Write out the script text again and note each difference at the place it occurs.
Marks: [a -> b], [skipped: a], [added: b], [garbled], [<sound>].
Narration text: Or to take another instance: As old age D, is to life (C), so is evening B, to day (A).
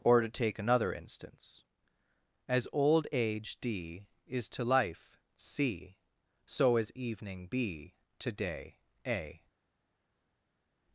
Or to take another instance: As old age D, is to life (C), so is evening B, to day (A).